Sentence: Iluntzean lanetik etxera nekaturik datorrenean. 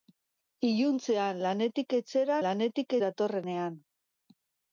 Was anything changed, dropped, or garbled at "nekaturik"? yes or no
yes